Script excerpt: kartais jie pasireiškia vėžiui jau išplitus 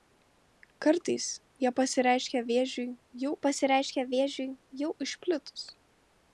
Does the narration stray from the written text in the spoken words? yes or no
yes